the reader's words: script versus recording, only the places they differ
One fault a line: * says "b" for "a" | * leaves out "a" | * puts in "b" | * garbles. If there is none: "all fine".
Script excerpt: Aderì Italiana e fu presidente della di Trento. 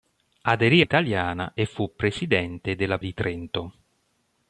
all fine